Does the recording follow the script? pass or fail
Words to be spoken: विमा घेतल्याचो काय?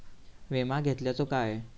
pass